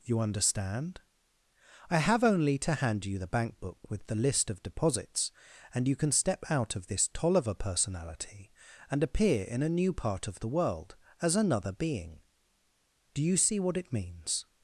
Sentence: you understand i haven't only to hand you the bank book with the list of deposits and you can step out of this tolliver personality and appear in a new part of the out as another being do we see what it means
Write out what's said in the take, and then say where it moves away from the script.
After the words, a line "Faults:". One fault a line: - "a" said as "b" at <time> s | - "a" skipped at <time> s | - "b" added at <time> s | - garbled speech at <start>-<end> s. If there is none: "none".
you understand i have only to hand you the bank book with the list of deposits and you can step out of this tolliver personality and appear in a new part of the world as another being do you see what it means
Faults:
- "haven't" said as "have" at 2.0 s
- "out" said as "world" at 10.5 s
- "we" said as "you" at 13.2 s